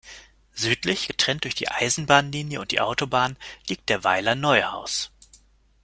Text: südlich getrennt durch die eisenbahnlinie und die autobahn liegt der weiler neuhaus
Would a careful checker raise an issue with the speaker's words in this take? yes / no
no